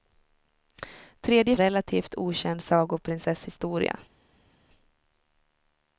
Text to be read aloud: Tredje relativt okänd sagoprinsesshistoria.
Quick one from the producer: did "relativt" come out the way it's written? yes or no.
yes